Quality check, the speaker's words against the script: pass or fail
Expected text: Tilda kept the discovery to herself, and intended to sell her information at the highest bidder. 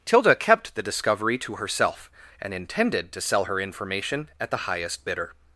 pass